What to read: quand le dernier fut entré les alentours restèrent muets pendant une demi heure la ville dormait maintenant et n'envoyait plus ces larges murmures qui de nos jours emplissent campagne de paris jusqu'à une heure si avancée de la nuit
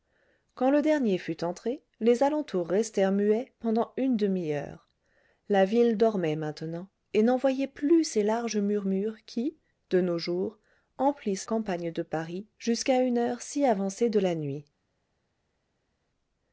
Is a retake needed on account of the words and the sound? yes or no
no